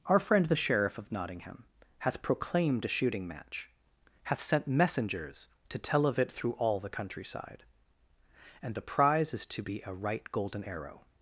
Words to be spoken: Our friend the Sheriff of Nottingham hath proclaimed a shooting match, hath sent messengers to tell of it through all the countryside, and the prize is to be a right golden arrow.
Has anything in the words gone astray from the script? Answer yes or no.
no